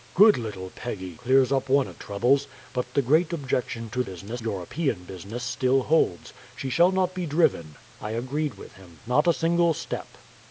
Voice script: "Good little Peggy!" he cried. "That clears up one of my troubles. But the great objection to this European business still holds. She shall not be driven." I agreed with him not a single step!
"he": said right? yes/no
no